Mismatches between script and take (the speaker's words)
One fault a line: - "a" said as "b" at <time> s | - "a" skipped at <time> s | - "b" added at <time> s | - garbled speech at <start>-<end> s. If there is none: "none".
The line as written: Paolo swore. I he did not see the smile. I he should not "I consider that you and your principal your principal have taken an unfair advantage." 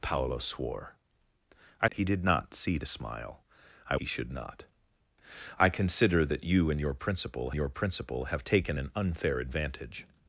none